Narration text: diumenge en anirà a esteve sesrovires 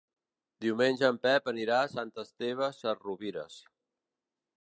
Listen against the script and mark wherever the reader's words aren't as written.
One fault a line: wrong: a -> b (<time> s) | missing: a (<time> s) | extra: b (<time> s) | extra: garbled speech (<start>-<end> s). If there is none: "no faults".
extra: pep (1.2 s)
extra: sant (1.9 s)